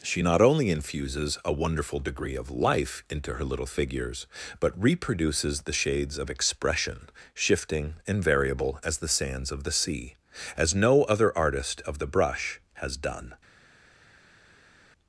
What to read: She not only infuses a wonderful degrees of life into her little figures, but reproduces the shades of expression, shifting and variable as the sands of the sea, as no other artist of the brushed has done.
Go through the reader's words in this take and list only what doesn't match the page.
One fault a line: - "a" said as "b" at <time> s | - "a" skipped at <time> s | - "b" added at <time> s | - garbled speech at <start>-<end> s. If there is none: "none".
- "degrees" said as "degree" at 2.0 s
- "brushed" said as "brush" at 12.1 s